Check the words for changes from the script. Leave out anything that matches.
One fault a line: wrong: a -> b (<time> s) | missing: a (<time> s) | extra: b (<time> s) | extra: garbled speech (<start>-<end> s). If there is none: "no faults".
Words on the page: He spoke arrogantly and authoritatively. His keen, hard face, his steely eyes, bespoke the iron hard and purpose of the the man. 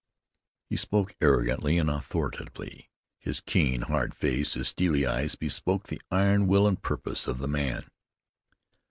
wrong: hard -> will (6.5 s)
missing: the (7.5 s)